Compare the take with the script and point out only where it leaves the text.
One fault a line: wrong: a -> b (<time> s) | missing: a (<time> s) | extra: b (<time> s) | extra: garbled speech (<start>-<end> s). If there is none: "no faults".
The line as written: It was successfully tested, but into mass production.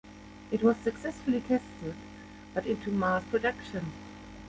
no faults